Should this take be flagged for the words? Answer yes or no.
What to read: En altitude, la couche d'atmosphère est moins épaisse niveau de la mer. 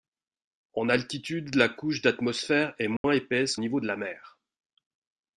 no